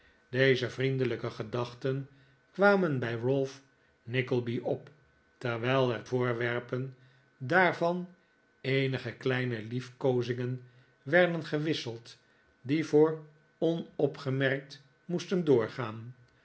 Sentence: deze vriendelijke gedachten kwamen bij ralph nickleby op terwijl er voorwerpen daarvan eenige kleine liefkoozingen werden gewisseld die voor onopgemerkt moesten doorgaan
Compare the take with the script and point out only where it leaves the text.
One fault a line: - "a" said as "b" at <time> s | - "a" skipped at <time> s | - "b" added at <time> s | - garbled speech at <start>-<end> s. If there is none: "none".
none